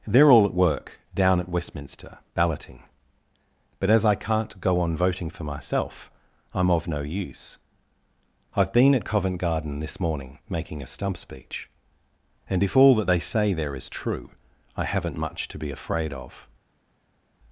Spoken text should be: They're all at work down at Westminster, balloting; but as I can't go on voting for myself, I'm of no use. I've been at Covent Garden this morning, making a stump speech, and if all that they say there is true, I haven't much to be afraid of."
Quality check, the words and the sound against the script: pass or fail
pass